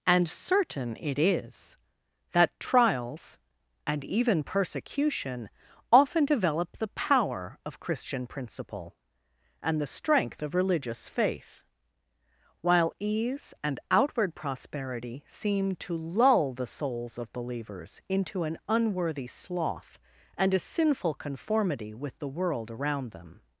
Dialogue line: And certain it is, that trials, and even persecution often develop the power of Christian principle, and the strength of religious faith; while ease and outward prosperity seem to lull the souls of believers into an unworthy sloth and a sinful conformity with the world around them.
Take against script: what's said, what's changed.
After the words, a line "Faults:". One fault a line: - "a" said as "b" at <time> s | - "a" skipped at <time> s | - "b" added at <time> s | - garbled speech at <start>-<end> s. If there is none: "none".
And certain it is, that trials, and even persecution often develop the power of Christian principle, and the strength of religious faith; while ease and outward prosperity seem to lull the souls of believers into an unworthy sloth and a sinful conformity with the world around them.
Faults:
none